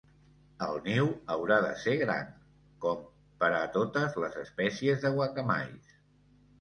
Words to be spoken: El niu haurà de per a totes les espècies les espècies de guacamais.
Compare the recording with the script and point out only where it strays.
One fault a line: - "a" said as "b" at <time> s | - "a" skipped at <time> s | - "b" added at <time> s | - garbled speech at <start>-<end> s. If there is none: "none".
- "ser gran com" added at 1.8 s
- "les espècies" skipped at 5.0 s